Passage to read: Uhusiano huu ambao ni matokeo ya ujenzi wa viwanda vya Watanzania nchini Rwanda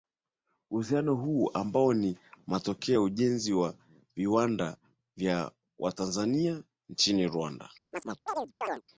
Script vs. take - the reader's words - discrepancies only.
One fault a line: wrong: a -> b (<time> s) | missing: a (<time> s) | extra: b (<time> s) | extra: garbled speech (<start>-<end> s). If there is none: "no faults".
no faults